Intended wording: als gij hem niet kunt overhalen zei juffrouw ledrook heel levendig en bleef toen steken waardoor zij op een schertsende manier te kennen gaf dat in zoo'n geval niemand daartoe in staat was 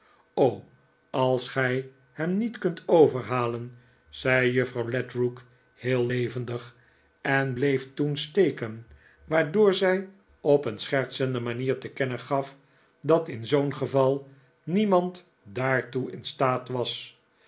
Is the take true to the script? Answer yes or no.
yes